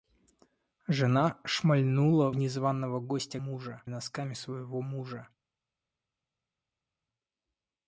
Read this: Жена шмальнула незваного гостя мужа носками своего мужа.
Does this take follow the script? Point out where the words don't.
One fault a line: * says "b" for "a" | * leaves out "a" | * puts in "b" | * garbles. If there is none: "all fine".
all fine